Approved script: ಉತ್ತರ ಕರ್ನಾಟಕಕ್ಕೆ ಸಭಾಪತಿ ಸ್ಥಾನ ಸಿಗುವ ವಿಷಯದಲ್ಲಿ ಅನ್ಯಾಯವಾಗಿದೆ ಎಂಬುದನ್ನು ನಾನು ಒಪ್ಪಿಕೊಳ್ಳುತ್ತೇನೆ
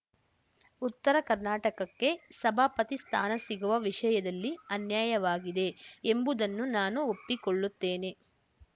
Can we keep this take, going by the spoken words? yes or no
yes